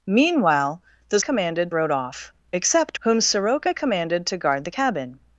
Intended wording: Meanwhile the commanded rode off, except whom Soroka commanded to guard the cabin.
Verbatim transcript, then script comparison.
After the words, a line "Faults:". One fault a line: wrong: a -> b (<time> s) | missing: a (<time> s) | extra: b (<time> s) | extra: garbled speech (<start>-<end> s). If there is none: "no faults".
Meanwhile the commanded rode off, except whom Soroka commanded to guard the cabin.
Faults:
no faults